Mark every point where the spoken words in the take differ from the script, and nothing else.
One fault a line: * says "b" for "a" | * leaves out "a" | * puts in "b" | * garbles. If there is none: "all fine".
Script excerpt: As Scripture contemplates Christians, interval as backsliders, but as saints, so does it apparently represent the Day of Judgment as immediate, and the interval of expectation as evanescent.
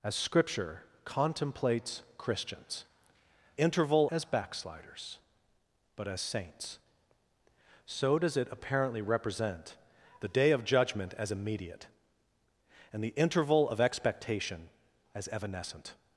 all fine